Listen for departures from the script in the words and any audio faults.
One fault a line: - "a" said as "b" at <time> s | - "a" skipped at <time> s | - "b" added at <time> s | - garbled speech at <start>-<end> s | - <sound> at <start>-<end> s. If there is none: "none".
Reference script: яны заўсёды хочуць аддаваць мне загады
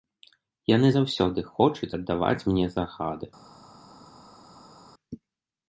none